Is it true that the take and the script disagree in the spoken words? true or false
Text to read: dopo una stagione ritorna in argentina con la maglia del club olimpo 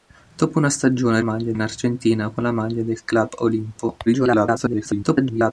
true